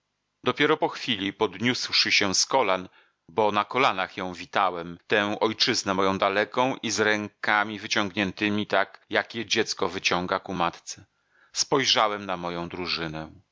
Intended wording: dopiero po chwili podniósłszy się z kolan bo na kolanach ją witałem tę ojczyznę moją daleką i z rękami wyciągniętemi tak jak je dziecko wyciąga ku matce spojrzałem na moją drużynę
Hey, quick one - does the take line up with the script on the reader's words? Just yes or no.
yes